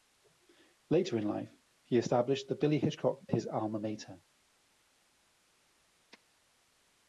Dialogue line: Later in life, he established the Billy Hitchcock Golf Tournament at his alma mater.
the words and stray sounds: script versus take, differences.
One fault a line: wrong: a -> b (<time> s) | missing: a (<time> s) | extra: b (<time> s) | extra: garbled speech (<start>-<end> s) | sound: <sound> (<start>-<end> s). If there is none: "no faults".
missing: Golf Tournament at (3.3 s)